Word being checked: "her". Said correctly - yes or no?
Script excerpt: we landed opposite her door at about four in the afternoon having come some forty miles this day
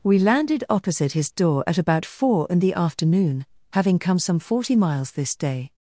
no